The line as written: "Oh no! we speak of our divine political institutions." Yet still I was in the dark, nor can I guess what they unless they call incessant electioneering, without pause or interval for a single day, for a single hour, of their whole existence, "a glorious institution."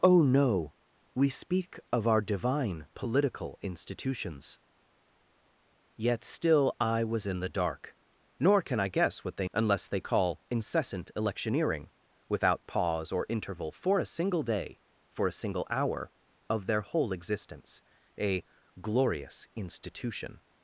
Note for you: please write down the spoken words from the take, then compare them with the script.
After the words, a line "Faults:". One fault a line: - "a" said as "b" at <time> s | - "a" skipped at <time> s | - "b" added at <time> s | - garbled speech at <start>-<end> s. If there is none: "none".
"Oh no! we speak of our divine political institutions." Yet still I was in the dark, nor can I guess what they unless they call incessant electioneering, without pause or interval for a single day, for a single hour, of their whole existence, "a glorious institution."
Faults:
none